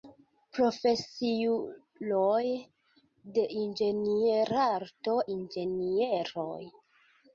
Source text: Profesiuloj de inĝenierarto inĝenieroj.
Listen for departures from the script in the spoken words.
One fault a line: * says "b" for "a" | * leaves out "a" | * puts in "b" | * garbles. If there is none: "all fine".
all fine